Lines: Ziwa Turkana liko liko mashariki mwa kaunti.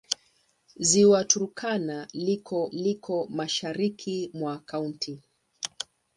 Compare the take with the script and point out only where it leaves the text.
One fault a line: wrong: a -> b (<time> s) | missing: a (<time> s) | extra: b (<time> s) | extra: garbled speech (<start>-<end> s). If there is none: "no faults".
no faults